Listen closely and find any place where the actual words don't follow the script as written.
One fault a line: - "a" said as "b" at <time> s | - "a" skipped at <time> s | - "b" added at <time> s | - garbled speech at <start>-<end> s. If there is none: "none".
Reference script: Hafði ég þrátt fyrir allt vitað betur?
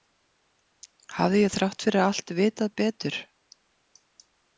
none